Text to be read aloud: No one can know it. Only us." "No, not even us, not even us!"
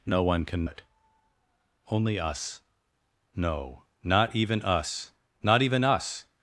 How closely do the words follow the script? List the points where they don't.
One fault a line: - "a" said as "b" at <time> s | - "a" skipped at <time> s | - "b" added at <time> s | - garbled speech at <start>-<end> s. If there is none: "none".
- "know" skipped at 0.7 s